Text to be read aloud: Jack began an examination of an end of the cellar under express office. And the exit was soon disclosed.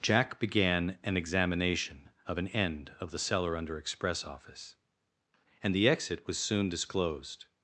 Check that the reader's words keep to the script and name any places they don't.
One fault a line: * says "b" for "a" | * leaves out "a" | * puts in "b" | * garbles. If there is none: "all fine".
all fine